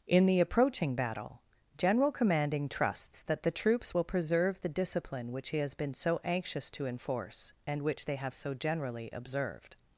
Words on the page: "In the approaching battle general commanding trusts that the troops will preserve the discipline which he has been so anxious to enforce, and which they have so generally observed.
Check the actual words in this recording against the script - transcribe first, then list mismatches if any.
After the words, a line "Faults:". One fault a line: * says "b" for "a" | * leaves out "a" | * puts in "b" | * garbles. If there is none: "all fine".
"In the approaching battle general commanding trusts that the troops will preserve the discipline which he has been so anxious to enforce, and which they have so generally observed.
Faults:
all fine